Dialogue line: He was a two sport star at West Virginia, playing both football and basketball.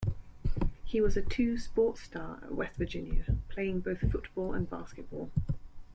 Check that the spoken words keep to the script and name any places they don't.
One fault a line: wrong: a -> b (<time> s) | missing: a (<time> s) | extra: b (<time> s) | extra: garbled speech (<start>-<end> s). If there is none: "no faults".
no faults